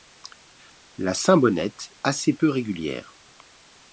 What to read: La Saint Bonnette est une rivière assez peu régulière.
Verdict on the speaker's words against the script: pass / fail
fail